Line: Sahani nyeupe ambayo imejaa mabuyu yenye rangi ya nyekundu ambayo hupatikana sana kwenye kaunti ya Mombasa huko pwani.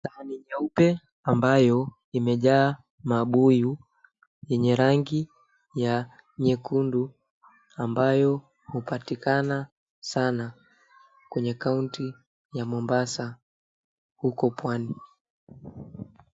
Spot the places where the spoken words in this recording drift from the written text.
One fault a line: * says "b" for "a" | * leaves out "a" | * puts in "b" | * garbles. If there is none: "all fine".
all fine